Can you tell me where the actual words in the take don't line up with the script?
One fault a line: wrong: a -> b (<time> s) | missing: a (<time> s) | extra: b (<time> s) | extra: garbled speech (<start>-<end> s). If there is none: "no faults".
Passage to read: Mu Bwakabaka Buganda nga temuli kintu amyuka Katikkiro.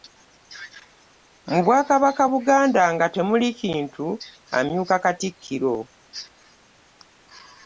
no faults